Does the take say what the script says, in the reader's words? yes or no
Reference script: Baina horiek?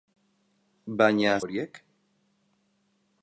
yes